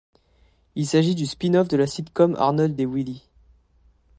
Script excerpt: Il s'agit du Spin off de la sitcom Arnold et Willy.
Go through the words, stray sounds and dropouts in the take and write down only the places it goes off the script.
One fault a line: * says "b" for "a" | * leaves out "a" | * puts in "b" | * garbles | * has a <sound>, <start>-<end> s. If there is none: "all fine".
all fine